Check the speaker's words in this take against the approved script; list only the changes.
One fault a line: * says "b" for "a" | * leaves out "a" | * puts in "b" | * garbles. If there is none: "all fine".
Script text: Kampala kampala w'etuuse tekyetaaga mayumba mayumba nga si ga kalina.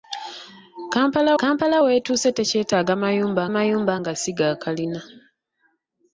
all fine